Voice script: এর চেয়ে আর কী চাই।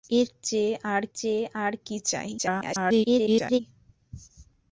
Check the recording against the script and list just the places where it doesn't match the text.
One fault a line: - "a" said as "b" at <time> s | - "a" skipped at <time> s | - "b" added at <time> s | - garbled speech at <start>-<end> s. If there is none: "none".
- "চেয়ে আর" added at 1.1 s
- garbled speech at 2.4-3.6 s